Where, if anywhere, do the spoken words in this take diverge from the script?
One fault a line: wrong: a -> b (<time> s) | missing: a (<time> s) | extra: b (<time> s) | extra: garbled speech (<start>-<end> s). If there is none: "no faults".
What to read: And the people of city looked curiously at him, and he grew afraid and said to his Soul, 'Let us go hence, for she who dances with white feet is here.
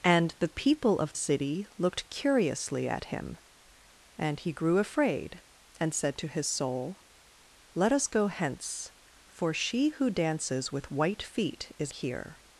no faults